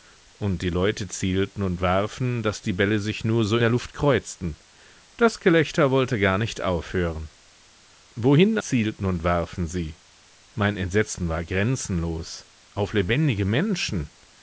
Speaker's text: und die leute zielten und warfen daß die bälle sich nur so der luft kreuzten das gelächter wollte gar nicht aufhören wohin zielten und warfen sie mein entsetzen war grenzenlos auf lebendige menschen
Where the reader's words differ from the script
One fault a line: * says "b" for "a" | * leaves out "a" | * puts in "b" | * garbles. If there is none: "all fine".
all fine